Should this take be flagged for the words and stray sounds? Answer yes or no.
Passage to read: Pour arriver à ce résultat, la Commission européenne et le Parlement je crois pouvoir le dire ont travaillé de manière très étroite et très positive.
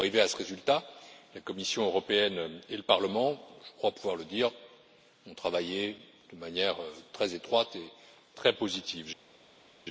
no